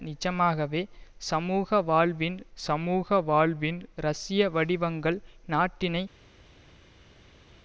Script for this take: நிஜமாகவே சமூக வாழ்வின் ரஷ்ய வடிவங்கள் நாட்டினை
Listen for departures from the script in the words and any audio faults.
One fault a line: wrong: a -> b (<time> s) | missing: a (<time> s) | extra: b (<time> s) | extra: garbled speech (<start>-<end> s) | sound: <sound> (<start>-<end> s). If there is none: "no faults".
extra: சமூக வாழ்வின் (2.6 s)